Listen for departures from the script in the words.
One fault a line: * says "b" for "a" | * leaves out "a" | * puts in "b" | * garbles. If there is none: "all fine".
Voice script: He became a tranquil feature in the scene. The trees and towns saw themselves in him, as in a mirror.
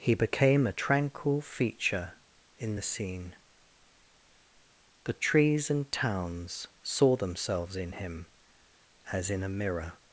all fine